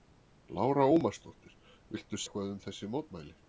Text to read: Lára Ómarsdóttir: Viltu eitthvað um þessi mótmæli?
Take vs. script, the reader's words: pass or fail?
pass